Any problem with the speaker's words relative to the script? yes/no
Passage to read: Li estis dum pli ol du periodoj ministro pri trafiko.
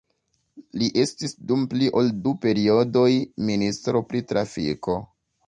no